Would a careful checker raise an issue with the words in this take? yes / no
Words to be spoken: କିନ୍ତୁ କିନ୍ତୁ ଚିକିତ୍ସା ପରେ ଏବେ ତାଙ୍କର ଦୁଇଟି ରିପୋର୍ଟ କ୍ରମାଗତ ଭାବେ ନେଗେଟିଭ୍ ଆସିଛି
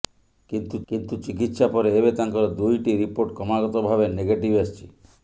no